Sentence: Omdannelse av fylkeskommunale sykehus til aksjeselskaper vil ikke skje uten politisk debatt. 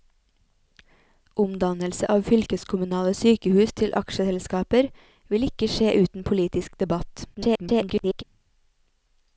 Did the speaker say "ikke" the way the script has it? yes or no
yes